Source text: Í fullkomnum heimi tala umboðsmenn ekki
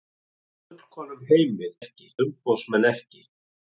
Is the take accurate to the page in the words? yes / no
no